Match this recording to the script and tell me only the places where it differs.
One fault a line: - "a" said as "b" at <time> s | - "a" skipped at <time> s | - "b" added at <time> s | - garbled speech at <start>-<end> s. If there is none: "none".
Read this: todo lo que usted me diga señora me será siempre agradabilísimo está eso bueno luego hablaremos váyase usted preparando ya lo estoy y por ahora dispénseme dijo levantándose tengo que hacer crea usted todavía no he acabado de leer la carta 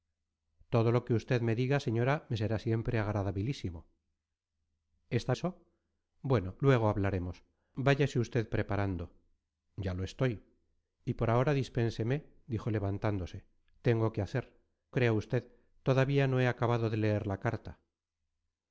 none